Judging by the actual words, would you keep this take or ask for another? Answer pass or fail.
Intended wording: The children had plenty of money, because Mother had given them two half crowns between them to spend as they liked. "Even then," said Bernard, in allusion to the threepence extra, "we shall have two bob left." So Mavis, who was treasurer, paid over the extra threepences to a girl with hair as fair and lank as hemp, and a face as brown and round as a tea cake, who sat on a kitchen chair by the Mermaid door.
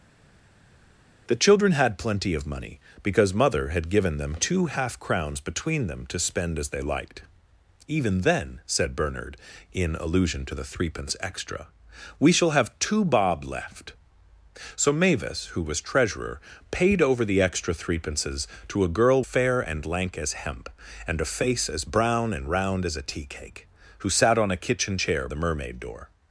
fail